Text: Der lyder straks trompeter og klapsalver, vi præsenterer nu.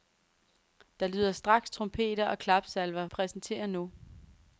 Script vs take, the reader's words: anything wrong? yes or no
yes